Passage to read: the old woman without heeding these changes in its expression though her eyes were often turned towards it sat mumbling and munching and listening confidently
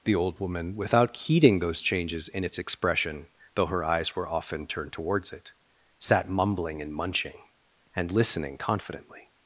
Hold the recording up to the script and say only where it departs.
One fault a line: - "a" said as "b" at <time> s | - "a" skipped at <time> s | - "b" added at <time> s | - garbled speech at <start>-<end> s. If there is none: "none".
- "these" said as "those" at 1.6 s